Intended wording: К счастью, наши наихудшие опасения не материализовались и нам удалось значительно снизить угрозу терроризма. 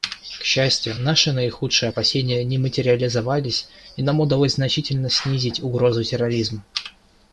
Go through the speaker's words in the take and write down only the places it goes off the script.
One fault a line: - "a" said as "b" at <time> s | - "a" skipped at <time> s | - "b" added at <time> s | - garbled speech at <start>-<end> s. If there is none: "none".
none